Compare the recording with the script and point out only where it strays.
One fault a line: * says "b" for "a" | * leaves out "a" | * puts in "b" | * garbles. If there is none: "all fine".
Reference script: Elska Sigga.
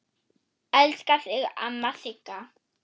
* puts in "þig amma"